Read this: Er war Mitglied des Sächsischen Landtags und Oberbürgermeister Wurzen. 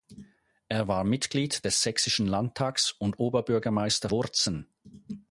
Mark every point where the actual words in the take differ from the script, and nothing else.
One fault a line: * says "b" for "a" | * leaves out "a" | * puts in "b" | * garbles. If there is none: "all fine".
all fine